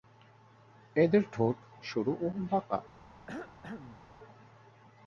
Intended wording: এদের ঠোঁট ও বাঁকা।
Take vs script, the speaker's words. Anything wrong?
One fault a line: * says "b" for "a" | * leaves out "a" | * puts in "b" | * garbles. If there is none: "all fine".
* puts in "সরু"